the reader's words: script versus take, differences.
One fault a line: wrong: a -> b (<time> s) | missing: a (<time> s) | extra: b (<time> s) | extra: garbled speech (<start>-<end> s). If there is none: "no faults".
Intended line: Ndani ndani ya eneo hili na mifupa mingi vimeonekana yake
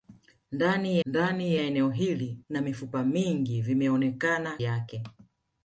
no faults